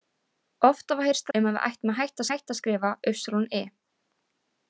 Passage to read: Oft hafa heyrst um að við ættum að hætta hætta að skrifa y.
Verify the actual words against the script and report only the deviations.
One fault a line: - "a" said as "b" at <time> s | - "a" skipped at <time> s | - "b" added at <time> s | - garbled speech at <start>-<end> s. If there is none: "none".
none